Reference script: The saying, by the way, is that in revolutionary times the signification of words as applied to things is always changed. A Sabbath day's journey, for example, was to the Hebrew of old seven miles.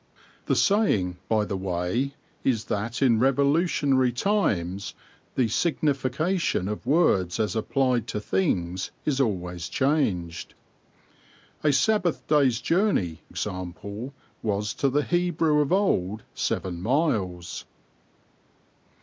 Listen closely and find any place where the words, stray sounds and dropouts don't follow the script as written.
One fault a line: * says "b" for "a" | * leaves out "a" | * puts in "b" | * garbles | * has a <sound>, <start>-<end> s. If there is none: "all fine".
* leaves out "for"